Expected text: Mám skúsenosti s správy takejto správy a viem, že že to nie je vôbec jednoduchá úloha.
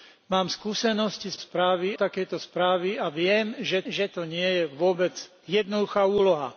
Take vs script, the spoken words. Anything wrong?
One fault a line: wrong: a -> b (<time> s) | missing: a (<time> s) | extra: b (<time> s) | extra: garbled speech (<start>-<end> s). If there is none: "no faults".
no faults